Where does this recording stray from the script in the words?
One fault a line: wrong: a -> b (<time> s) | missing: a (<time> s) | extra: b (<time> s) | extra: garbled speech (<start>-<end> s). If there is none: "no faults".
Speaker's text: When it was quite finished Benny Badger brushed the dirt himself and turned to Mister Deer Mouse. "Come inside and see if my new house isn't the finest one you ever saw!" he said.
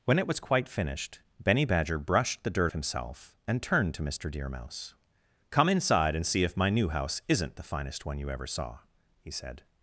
no faults